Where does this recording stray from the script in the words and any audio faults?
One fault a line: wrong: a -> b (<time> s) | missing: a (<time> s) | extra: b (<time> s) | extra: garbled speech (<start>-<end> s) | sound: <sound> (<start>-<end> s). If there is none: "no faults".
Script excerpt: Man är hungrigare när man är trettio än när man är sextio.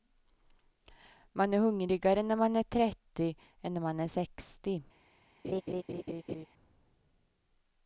sound: laugh (5.4-6.5 s)